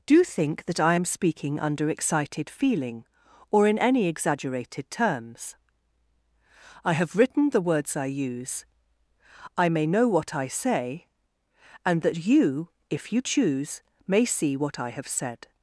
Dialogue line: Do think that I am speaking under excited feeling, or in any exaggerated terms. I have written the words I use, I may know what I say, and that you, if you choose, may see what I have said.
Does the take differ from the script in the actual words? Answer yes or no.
no